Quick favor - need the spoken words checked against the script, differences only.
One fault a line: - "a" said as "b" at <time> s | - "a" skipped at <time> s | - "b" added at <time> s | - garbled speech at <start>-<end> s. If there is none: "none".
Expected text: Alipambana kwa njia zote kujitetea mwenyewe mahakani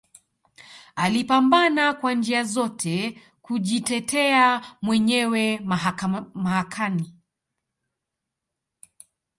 none